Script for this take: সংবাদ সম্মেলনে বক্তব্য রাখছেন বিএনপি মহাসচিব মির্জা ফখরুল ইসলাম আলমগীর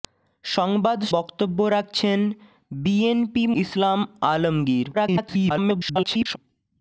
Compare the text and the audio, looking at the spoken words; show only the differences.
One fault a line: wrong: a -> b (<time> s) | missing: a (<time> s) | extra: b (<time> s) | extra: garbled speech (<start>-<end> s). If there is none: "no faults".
missing: সম্মেলনে (1.0 s)
missing: মহাসচিব মির্জা ফখরুল (3.4 s)
extra: garbled speech (4.9-6.4 s)